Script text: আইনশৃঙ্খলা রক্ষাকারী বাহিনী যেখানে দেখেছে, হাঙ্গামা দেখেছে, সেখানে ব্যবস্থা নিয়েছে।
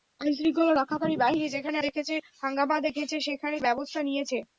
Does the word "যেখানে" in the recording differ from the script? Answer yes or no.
no